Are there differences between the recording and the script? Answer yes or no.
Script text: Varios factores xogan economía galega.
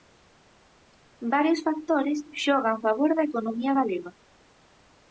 yes